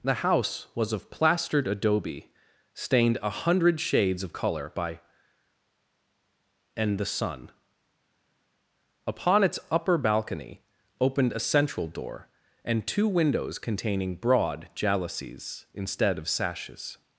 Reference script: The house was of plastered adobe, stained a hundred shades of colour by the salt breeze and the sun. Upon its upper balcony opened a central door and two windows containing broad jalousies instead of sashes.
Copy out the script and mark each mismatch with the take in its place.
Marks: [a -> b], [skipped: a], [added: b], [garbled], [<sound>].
The house was of plastered adobe, stained a hundred shades of colour by [skipped: the salt breeze] and the sun. Upon its upper balcony opened a central door and two windows containing broad jalousies instead of sashes.